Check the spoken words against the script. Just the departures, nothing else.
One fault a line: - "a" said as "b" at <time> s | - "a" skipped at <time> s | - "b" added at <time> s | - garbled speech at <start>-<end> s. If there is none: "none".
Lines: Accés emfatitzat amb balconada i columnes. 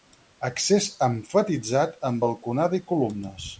none